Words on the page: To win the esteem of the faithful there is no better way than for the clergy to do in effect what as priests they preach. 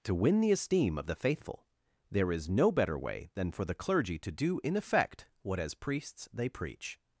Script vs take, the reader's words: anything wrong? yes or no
no